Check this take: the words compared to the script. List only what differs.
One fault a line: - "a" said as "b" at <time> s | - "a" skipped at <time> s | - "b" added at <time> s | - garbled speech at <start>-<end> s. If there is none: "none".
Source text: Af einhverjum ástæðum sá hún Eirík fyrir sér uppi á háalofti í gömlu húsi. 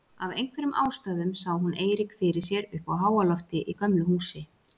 none